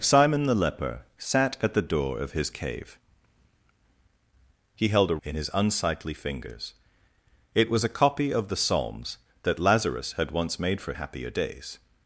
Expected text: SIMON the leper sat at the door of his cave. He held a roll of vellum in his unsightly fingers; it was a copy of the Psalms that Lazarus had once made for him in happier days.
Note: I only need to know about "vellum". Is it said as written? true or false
false